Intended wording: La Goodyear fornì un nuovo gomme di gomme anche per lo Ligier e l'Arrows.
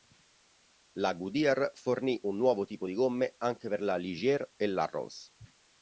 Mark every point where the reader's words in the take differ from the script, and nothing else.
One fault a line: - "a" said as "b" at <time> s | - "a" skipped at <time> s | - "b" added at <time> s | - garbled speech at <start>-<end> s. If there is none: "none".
- "gomme" said as "tipo" at 2.6 s
- "lo" said as "la" at 3.8 s